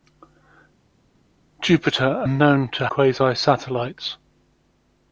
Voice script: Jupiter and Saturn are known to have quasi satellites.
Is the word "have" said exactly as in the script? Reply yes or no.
no